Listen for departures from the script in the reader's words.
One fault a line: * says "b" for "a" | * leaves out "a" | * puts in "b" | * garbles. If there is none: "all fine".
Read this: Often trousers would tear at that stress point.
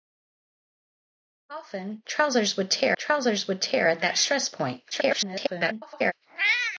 * puts in "trousers would tear"
* garbles